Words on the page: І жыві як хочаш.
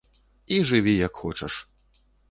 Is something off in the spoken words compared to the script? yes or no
no